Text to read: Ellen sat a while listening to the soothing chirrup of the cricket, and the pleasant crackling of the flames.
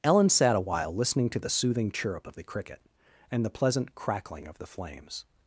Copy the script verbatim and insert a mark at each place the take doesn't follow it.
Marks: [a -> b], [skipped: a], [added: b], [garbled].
Ellen sat a while listening to the soothing chirrup of the cricket, and the pleasant crackling of the flames.